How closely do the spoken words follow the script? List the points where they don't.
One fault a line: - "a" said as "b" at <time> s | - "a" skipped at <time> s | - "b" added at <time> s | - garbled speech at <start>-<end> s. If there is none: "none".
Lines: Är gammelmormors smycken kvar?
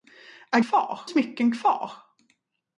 - "gammelmormors" said as "kvar" at 0.6 s